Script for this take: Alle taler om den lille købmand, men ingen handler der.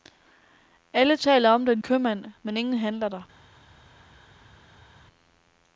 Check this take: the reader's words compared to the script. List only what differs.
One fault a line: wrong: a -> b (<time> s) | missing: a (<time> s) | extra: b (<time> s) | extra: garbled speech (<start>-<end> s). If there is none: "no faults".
missing: lille (1.8 s)